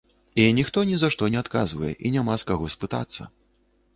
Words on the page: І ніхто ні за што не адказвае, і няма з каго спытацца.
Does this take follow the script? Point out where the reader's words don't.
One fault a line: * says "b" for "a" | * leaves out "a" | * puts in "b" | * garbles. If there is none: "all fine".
all fine